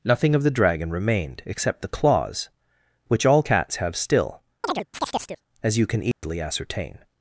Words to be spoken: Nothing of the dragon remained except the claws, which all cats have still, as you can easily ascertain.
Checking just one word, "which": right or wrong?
right